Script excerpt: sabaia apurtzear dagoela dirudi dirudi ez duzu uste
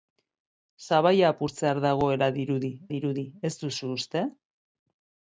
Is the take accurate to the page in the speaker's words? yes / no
yes